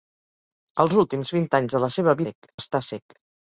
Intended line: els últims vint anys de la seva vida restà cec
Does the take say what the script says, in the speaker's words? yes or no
no